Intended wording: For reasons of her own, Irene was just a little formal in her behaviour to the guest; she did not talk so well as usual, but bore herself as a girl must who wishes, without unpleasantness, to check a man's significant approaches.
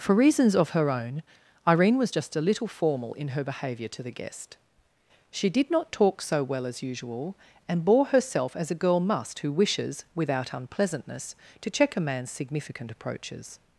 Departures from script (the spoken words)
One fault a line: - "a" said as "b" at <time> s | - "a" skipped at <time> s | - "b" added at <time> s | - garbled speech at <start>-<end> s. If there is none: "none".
- "but" said as "and" at 7.7 s